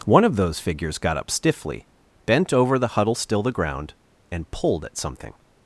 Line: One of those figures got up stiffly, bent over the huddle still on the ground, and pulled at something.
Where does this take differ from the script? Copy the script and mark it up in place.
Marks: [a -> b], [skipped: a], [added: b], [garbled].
One of those figures got up stiffly, bent over the huddle still [skipped: on] the ground, and pulled at something.